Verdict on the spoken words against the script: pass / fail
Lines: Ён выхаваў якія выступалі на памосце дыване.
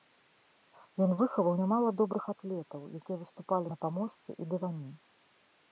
fail